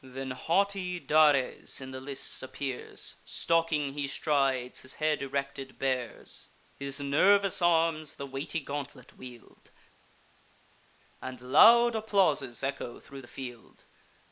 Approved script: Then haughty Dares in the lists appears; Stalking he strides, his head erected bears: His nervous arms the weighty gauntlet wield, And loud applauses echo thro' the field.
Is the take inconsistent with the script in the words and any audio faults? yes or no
no